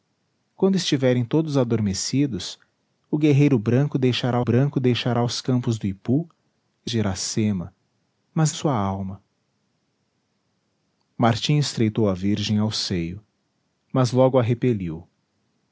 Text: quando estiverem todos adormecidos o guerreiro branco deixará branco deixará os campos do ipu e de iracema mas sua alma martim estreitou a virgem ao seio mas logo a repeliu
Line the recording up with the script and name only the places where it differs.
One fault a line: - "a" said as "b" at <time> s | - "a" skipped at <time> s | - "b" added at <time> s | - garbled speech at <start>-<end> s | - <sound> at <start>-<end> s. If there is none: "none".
none